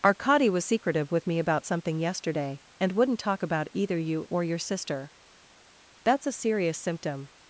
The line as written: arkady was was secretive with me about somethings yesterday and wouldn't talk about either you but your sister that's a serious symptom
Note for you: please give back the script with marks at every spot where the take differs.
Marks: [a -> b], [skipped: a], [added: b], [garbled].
arkady was [skipped: was] secretive with me about [somethings -> something] yesterday and wouldn't talk about either you [but -> or] your sister that's a serious symptom